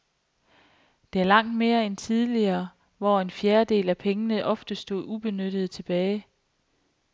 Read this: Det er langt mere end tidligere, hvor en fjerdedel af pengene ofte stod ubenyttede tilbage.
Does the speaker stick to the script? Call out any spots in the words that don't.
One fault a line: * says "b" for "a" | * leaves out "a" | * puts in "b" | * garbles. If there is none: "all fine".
all fine